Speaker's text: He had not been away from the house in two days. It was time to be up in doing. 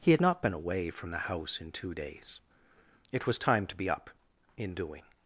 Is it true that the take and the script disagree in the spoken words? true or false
false